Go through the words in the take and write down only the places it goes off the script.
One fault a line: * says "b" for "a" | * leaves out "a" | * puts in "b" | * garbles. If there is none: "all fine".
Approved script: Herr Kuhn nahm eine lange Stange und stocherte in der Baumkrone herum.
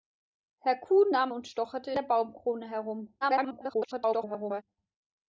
* leaves out "eine lange Stange"
* leaves out "in"
* garbles